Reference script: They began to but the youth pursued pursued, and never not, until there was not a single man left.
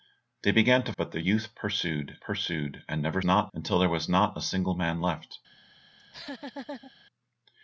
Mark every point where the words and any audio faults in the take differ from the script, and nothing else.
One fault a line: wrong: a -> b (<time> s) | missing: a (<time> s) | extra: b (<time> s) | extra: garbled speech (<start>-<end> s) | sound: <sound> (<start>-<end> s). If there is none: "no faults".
sound: laugh (6.0-6.9 s)